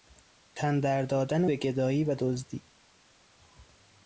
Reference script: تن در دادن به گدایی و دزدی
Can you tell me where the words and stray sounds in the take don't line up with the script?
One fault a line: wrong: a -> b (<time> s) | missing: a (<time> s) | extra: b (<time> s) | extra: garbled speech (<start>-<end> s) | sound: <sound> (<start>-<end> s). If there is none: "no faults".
no faults